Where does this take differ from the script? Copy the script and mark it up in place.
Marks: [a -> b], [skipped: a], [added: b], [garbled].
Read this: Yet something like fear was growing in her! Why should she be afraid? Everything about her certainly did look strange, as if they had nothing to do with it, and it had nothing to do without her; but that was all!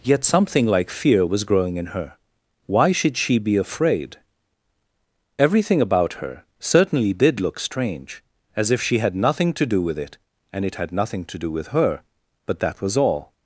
Yet something like fear was growing in her! Why should she be afraid? Everything about her certainly did look strange, as if [they -> she] had nothing to do with it, and it had nothing to do [without -> with] her; but that was all!